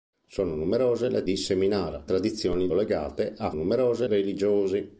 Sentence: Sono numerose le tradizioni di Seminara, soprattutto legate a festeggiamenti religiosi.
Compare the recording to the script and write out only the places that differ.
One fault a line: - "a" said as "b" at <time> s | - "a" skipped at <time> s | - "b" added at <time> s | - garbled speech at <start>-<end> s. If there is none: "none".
- "tradizioni" skipped at 1.2 s
- "soprattutto" said as "tradizioni" at 2.0 s
- "festeggiamenti" said as "numerose" at 3.5 s